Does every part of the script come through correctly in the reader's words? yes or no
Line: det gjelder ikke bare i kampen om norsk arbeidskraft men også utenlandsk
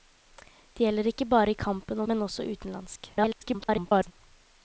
no